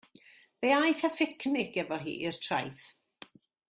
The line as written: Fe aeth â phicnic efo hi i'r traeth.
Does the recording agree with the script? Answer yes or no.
yes